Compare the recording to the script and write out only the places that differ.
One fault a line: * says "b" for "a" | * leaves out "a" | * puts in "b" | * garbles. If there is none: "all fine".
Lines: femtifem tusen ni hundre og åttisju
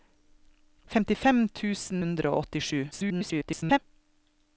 * leaves out "ni"
* garbles